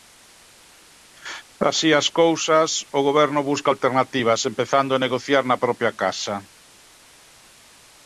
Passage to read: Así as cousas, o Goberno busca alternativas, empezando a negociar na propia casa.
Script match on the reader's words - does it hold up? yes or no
yes